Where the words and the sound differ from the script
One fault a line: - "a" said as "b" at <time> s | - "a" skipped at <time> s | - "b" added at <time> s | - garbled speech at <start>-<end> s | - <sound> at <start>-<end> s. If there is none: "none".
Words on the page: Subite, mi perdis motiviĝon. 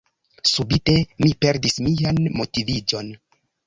- "mian" added at 1.9 s